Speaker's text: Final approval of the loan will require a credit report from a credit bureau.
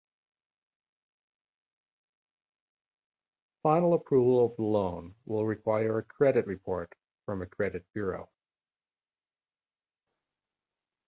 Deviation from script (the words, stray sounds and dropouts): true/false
false